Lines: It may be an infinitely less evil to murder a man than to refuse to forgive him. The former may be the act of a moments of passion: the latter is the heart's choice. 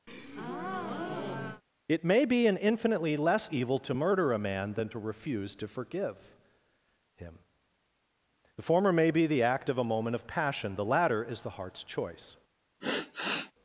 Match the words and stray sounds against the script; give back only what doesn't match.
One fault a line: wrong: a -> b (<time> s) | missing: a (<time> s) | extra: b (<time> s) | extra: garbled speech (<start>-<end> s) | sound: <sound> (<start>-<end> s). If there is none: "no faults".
sound: breath (0.1-1.6 s)
wrong: moments -> moment (9.8 s)
sound: sigh (12.8-13.5 s)